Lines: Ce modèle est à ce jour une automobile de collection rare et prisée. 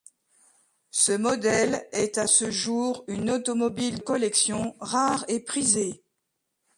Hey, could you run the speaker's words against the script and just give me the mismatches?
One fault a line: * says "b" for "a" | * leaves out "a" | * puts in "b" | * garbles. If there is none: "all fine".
* leaves out "de"